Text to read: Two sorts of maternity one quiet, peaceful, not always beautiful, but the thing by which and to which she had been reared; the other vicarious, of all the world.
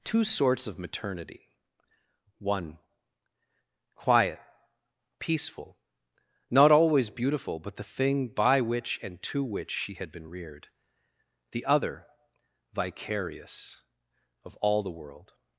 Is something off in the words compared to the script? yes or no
no